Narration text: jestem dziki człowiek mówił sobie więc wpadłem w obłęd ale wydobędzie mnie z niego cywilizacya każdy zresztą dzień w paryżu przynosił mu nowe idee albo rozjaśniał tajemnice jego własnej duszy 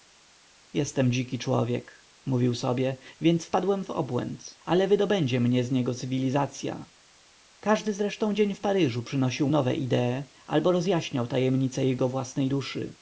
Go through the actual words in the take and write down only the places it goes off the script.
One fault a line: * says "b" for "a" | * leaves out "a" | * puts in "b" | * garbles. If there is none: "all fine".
* leaves out "mu"